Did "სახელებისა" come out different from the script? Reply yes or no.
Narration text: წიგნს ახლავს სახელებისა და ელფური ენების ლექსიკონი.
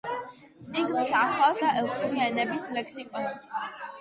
yes